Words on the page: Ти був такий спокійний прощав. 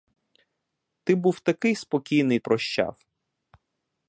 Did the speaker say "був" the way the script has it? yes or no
yes